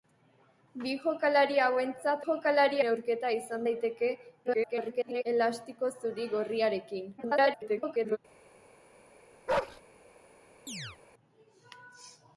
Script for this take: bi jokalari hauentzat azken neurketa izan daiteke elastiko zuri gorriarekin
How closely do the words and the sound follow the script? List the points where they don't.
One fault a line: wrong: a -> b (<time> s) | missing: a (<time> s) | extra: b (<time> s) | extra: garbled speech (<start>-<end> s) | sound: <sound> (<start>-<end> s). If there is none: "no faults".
wrong: azken -> jokalari (2.2 s)
extra: garbled speech (4.4-5.2 s)
extra: garbled speech (7.2-8.2 s)
sound: bark (9.5-9.8 s)
sound: chirp (10.7-11.0 s)